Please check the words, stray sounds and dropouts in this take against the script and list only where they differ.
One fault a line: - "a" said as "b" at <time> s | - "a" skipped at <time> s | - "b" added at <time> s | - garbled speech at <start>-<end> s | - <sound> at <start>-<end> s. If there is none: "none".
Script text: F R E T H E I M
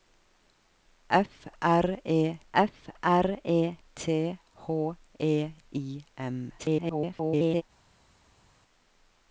- "f R E" added at 2.5 s
- garbled speech at 6.6-7.6 s